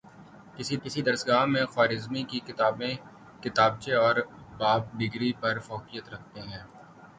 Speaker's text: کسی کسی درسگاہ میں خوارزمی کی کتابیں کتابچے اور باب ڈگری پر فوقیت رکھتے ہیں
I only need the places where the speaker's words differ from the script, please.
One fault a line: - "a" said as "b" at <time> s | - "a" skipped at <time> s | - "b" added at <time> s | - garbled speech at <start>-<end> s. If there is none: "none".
none